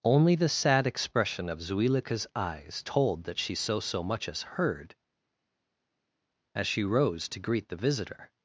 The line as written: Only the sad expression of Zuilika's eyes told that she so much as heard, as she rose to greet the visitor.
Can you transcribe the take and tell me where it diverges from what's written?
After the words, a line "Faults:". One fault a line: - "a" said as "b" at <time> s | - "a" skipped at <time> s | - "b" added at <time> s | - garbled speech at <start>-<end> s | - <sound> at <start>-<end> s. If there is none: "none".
Only the sad expression of Zuilika's eyes told that she so so much as heard, as she rose to greet the visitor.
Faults:
- "so" added at 3.8 s